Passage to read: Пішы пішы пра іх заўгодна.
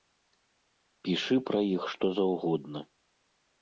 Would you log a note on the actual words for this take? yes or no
yes